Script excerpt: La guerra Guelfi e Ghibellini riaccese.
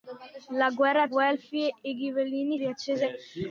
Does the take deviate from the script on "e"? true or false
false